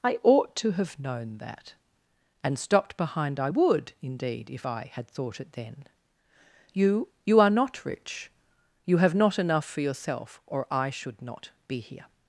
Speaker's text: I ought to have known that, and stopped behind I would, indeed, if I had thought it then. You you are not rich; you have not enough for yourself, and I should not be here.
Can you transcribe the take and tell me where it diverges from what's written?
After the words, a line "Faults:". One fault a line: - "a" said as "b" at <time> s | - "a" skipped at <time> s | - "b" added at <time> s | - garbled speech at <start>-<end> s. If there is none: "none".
I ought to have known that, and stopped behind I would, indeed, if I had thought it then. You you are not rich; you have not enough for yourself, or I should not be here.
Faults:
- "and" said as "or" at 10.5 s